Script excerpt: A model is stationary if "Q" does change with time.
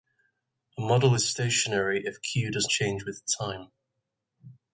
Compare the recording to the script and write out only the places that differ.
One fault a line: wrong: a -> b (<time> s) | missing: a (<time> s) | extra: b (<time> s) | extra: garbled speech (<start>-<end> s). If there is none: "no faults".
no faults